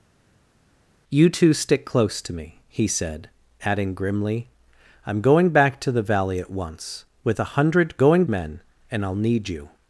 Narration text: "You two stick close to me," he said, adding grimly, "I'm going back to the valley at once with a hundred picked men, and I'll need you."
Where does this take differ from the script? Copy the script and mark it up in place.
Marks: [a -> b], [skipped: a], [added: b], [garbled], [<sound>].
"You two stick close to me," he said, adding grimly, "I'm going back to the valley at once with a hundred [picked -> going] men, and I'll need you."